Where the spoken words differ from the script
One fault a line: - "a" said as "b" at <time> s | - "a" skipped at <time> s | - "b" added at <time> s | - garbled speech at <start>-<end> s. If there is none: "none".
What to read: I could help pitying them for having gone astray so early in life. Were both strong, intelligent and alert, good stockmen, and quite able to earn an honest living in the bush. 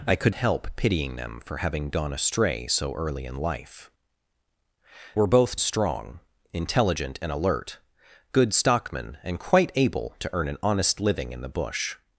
none